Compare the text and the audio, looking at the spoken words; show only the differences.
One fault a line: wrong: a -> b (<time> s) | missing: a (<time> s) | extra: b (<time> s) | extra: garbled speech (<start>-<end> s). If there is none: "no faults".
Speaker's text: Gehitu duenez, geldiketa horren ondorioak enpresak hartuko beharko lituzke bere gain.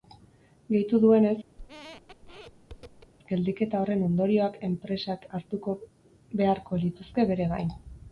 no faults